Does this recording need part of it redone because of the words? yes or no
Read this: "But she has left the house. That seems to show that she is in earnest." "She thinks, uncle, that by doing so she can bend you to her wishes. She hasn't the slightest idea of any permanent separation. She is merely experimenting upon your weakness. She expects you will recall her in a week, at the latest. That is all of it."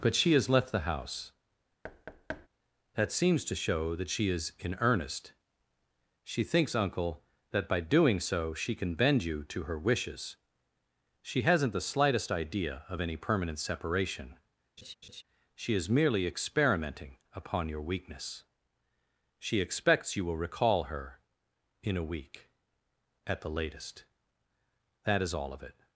no